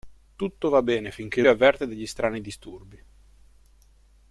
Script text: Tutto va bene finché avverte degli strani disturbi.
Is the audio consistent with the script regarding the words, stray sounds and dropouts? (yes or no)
yes